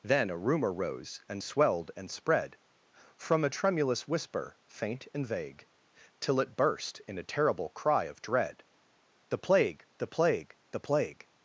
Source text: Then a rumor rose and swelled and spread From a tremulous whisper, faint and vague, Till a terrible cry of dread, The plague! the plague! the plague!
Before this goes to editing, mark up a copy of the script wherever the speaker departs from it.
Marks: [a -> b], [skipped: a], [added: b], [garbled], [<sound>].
Then a rumor rose and swelled and spread From a tremulous whisper, faint and vague, Till [added: it burst in] a terrible cry of dread, The plague! the plague! the plague!